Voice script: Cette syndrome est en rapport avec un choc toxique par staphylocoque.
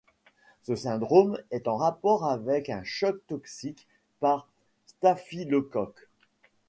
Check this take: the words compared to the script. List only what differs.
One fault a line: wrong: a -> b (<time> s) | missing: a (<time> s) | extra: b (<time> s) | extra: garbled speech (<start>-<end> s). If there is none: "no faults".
wrong: Cette -> Ce (0.6 s)